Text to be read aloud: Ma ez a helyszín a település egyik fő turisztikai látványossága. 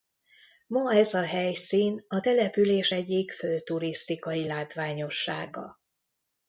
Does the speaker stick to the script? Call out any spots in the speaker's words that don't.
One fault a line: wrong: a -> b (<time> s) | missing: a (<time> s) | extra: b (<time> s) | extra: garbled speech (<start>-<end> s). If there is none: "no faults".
no faults